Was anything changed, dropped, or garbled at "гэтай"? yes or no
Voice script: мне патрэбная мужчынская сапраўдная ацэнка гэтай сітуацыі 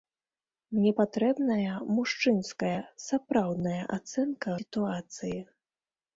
yes